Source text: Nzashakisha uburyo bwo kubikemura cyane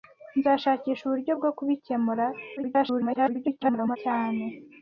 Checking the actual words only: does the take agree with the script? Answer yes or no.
no